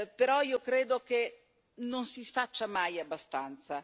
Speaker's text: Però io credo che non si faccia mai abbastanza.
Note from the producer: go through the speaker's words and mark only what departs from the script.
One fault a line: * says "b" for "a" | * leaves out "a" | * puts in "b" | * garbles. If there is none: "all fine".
all fine